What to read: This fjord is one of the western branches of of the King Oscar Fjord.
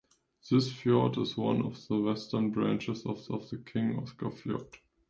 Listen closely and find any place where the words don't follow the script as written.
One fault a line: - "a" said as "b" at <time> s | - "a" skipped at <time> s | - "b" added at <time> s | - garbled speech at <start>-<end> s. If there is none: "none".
none